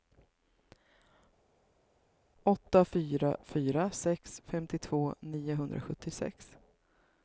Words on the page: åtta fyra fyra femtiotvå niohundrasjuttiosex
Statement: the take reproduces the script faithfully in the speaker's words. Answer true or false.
false